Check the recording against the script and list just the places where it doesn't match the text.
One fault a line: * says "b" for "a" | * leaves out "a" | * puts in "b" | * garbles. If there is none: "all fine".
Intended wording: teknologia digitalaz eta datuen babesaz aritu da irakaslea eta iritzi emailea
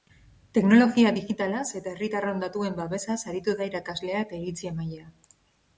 * puts in "herritarron"